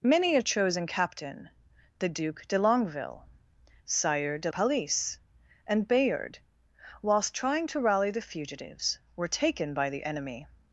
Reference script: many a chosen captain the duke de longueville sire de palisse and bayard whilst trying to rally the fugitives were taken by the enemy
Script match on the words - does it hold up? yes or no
yes